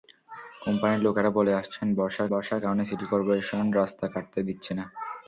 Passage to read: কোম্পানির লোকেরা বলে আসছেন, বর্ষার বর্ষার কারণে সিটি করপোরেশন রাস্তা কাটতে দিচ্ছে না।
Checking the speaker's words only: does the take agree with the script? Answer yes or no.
yes